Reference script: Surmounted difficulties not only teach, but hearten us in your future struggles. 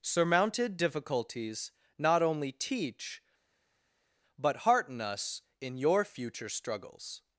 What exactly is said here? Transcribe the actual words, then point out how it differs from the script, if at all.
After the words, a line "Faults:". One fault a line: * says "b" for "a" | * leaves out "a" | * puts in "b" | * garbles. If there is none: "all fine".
Surmounted difficulties not only teach, but hearten us in your future struggles.
Faults:
all fine